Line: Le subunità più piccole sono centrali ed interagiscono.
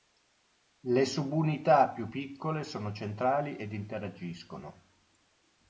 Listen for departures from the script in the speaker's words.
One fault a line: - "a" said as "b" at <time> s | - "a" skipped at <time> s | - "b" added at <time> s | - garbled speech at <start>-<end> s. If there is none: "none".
none